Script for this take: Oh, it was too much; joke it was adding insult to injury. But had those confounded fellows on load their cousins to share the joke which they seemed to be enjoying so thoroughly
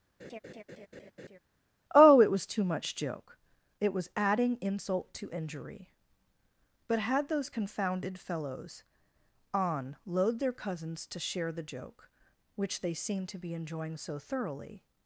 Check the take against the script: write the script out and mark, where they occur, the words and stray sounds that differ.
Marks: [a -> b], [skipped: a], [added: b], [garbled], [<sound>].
[laugh] Oh, it was too much; joke it was adding insult to injury. But had those confounded fellows on load their cousins to share the joke which they seemed to be enjoying so thoroughly